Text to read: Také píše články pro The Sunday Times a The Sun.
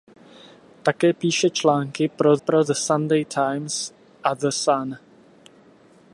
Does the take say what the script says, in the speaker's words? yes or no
no